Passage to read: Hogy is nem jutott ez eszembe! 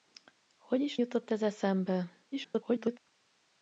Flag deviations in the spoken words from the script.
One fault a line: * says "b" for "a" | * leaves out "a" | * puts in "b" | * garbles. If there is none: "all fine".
* leaves out "nem"
* garbles